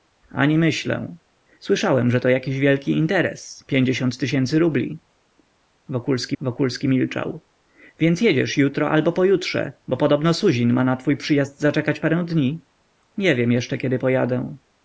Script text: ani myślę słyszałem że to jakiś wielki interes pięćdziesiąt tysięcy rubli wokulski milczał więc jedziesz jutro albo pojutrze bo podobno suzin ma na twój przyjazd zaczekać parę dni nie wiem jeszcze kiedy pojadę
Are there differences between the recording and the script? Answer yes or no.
yes